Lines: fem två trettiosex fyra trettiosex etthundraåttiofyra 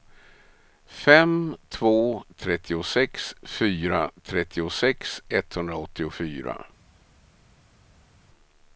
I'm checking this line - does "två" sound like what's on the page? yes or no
yes